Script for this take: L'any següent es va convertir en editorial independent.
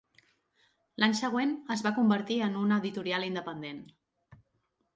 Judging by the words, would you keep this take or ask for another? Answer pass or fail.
fail